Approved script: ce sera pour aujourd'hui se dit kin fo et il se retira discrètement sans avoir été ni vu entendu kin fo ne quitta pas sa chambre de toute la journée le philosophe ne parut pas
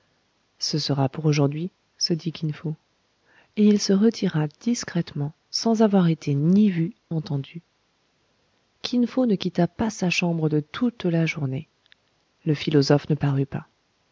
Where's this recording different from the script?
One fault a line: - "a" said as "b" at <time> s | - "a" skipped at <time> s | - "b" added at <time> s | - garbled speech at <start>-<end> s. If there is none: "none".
none